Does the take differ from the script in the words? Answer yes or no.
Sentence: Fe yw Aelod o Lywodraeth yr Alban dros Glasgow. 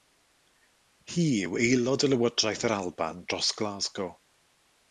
yes